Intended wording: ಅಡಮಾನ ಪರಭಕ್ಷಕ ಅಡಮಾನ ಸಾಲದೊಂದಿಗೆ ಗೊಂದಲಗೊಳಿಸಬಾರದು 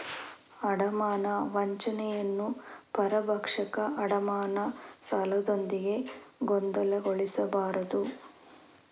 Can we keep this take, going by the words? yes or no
no